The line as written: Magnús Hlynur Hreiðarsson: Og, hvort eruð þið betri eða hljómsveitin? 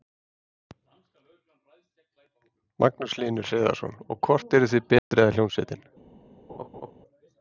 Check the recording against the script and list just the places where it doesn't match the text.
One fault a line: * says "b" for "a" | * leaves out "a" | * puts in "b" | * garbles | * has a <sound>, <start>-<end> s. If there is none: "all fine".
* has a dropout, 5.0-5.1 s
* has a laugh, 6.5-6.9 s